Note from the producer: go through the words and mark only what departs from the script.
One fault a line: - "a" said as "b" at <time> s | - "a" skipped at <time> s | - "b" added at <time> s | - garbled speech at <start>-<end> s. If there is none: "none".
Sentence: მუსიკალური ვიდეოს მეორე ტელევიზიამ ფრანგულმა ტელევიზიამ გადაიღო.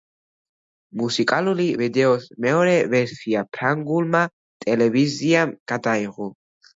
- "ტელევიზიამ" said as "ვერსია" at 2.9 s